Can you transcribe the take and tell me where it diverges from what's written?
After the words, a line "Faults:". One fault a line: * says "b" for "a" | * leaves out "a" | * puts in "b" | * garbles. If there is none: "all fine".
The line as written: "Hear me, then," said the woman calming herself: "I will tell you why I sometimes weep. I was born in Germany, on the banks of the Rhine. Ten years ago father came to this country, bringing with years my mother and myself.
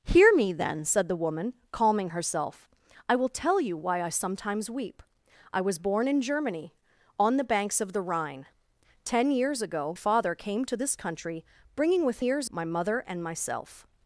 "Hear me, then," said the woman calming herself: "I will tell you why I sometimes weep. I was born in Germany, on the banks of the Rhine. Ten years ago father came to this country, bringing with years my mother and myself.
Faults:
all fine